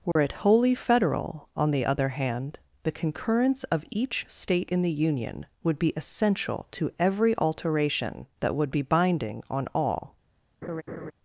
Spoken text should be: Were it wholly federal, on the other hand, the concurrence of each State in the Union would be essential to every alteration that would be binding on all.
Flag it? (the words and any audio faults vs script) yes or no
yes